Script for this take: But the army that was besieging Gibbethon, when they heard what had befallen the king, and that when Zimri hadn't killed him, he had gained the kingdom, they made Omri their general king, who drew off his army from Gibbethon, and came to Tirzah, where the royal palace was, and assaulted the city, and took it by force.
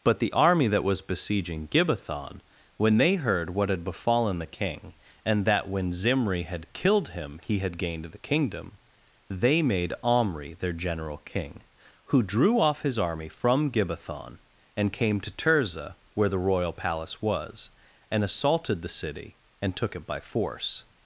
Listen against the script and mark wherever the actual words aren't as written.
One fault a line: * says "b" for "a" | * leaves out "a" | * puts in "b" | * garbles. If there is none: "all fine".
* says "had" for "hadn't"